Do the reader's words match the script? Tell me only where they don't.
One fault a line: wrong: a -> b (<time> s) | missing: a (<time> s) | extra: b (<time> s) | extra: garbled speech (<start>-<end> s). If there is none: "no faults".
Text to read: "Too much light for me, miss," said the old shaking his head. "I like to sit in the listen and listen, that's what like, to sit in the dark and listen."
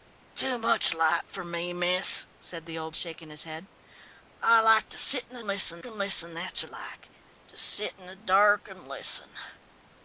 no faults